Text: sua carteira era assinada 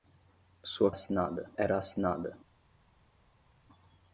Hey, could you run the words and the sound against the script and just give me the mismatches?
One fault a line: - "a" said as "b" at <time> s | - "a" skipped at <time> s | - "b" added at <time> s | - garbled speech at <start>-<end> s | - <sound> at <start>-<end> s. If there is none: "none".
- "carteira" said as "assinada" at 0.9 s